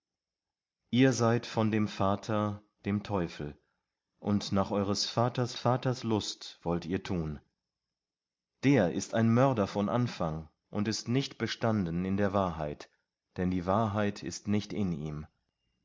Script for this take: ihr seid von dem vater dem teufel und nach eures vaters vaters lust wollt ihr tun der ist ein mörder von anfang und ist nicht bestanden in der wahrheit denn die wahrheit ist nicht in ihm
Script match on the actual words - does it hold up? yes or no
yes